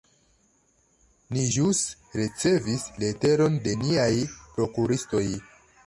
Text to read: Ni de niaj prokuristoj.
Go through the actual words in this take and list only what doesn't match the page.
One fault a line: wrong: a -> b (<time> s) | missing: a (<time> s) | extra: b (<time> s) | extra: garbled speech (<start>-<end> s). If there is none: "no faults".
extra: ĵus ricevis leteron (1.5 s)